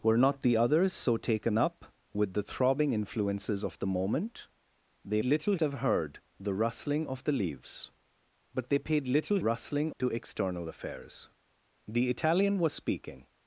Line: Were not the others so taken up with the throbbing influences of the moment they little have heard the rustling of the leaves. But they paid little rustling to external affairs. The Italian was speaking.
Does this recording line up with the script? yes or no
yes